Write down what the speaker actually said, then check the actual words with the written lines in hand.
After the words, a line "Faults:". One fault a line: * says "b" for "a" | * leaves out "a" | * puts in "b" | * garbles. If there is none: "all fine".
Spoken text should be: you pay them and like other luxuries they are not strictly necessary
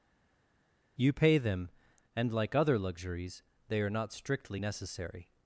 you pay them and like other luxuries they are not strictly necessary
Faults:
all fine